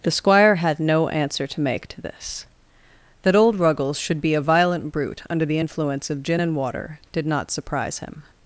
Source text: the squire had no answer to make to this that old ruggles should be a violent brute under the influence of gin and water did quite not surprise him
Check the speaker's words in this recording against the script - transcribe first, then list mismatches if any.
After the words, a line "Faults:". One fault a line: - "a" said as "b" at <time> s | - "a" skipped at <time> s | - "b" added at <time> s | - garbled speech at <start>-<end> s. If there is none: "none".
the squire had no answer to make to this that old ruggles should be a violent brute under the influence of gin and water did not surprise him
Faults:
- "quite" skipped at 7.2 s